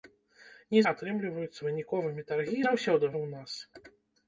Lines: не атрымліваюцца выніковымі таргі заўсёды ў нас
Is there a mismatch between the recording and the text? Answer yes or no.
no